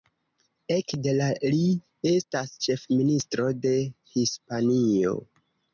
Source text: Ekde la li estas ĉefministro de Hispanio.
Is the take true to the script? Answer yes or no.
yes